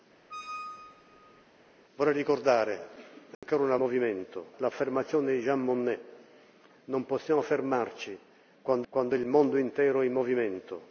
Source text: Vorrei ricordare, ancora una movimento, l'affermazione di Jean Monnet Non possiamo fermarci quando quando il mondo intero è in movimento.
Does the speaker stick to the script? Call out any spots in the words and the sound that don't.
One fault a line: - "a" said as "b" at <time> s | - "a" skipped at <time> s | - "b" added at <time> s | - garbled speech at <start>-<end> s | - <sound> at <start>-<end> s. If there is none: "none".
- squeak at 0.3-1.4 s
- dropout at 3.3-3.4 s